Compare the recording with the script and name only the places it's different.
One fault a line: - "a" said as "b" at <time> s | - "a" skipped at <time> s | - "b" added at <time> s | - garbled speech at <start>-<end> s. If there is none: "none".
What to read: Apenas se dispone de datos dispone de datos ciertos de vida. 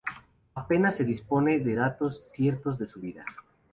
- "dispone" said as "ciertos" at 2.3 s
- "datos ciertos de" said as "su" at 2.9 s